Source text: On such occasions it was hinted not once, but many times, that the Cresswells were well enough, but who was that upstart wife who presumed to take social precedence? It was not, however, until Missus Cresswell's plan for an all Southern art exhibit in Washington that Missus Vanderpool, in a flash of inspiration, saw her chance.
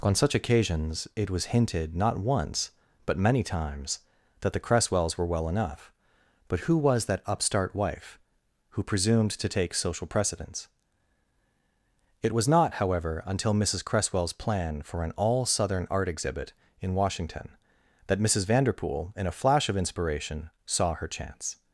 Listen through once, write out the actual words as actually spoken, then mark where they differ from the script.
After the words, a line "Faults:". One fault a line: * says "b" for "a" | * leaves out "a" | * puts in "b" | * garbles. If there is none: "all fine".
On such occasions it was hinted not once, but many times, that the Cresswells were well enough, but who was that upstart wife who presumed to take social precedence? It was not, however, until Missus Cresswell's plan for an all Southern art exhibit in Washington that Missus Vanderpool, in a flash of inspiration, saw her chance.
Faults:
all fine